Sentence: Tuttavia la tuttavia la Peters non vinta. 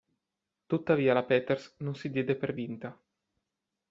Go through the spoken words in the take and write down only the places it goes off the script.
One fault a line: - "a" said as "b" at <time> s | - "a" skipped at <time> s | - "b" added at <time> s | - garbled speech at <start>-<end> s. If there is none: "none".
- "tuttavia la Peters non" said as "Peters non si diede per" at 1.2 s